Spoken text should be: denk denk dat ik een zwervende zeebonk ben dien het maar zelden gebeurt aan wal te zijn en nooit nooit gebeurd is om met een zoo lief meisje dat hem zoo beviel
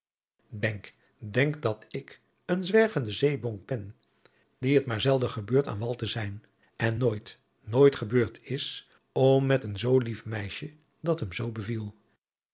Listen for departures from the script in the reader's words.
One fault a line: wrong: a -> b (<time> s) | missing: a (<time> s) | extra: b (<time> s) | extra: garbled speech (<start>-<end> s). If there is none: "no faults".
no faults